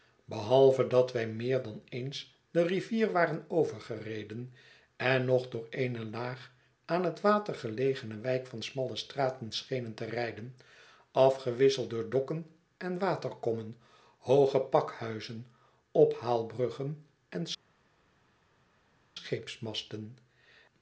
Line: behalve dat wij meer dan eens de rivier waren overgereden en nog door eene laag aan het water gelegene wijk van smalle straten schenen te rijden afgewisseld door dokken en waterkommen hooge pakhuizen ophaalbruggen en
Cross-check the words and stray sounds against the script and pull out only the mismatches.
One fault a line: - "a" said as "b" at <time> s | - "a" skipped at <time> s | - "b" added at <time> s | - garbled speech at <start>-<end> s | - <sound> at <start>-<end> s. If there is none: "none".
none